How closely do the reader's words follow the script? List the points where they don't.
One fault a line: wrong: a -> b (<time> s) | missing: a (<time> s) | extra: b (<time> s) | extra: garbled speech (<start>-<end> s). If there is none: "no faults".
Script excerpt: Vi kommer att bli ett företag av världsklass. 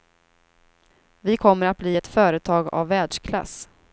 no faults